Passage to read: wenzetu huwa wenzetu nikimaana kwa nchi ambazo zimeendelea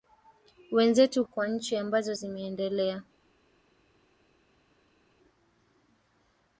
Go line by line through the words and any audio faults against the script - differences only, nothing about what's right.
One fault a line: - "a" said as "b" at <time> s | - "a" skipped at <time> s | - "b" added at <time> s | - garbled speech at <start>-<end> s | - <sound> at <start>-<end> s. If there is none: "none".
- "huwa wenzetu nikimaana" skipped at 1.2 s